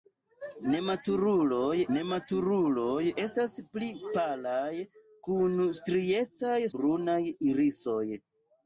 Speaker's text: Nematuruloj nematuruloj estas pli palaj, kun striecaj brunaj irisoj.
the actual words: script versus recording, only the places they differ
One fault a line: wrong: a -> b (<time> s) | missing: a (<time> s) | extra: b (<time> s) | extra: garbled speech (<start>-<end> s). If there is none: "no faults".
no faults